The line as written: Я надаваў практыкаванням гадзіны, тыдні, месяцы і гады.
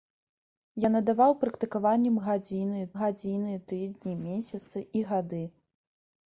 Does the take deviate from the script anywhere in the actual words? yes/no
yes